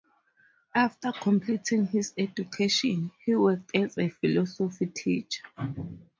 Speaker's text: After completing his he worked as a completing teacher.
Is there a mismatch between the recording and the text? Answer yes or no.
yes